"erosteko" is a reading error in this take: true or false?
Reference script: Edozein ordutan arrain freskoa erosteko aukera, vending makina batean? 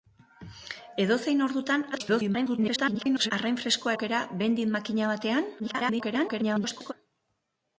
true